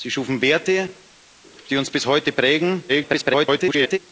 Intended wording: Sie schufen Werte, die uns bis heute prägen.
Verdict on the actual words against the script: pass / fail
fail